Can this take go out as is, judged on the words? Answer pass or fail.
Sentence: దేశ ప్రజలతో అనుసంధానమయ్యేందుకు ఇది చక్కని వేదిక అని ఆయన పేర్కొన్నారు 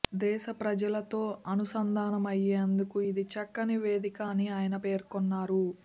pass